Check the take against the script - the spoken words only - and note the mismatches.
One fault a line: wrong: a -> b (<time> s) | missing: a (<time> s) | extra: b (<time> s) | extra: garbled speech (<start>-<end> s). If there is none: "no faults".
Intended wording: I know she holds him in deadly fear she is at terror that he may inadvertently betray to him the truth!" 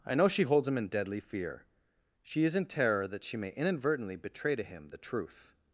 wrong: at -> in (2.6 s)
wrong: he -> she (3.2 s)